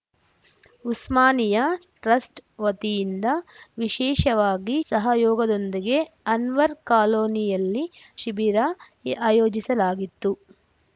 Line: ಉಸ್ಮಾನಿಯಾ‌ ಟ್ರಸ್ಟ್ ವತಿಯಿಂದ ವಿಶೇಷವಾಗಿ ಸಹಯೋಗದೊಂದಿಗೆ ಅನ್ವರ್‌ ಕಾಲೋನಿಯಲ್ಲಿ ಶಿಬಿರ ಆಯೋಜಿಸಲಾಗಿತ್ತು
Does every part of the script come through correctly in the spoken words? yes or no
yes